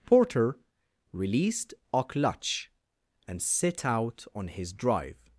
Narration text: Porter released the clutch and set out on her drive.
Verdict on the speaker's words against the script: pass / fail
fail